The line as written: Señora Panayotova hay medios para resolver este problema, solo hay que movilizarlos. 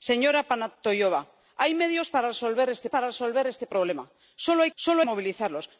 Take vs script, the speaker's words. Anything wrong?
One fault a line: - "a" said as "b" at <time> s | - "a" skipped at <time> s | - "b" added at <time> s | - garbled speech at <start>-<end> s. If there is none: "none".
- "para resolver este" added at 2.9 s
- "que" said as "solo" at 4.7 s